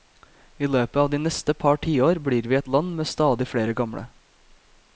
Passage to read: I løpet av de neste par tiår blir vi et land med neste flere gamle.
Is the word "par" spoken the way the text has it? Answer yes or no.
yes